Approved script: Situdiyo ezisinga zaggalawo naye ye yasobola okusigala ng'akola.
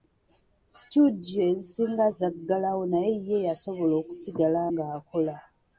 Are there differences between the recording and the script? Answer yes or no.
no